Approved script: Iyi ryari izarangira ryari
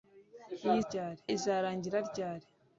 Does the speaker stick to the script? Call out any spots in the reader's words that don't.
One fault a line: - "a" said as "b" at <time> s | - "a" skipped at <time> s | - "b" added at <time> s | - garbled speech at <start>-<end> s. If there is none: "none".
none